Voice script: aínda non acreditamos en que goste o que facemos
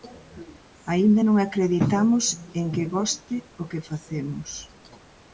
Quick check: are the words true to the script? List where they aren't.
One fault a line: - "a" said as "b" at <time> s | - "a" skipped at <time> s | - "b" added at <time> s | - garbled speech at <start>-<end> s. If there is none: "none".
none